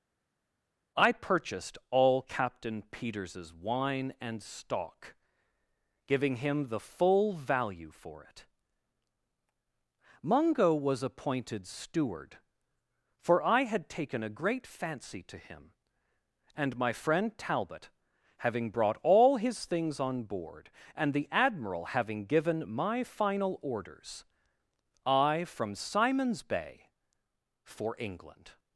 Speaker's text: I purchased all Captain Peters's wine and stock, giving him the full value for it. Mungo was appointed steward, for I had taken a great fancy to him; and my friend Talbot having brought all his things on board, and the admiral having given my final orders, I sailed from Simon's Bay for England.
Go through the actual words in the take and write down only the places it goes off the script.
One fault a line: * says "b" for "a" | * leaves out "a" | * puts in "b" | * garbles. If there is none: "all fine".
* leaves out "sailed"